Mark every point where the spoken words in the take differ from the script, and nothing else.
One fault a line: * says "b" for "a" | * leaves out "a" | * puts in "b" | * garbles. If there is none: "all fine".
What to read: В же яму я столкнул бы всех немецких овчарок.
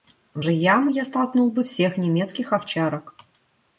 all fine